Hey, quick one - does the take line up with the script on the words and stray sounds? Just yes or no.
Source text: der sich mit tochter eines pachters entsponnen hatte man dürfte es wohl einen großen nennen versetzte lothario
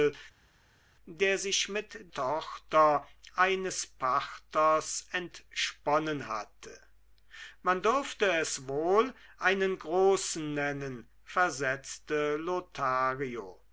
yes